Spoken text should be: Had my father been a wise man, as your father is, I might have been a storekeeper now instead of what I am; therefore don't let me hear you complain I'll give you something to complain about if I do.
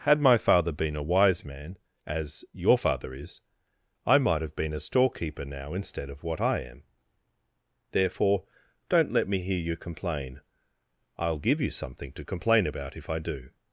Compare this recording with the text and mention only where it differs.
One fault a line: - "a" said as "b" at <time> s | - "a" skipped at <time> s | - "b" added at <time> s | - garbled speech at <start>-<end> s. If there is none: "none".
none